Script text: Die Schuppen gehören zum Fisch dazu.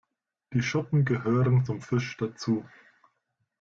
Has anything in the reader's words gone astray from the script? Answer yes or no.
no